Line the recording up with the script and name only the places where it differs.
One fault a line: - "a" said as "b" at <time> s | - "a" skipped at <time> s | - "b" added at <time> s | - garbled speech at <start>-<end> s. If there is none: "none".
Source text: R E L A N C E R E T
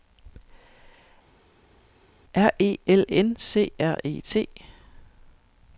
- "A" skipped at 3.0 s
- "E" skipped at 3.7 s